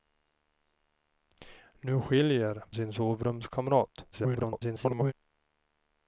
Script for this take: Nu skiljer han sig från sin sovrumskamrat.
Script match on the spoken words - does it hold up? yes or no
no